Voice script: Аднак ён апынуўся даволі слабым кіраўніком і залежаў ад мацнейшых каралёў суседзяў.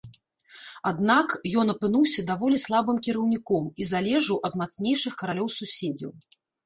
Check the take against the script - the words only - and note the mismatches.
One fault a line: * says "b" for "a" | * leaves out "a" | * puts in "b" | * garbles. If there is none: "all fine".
all fine